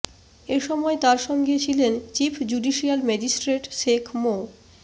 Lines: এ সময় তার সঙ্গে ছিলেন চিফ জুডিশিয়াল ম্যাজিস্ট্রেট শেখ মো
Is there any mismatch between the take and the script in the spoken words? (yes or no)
no